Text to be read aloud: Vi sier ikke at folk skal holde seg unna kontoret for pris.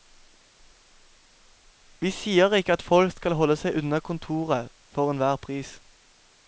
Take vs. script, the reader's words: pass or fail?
fail